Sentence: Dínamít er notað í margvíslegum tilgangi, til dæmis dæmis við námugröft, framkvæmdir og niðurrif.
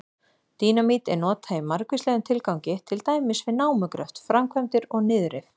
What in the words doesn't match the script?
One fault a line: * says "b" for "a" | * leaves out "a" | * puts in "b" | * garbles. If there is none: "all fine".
* leaves out "dæmis"